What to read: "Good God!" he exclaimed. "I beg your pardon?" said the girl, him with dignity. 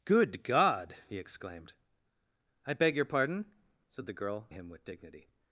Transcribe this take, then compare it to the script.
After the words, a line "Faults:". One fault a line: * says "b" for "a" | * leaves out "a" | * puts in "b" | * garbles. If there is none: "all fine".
"Good God!" he exclaimed. "I beg your pardon?" said the girl, him with dignity.
Faults:
all fine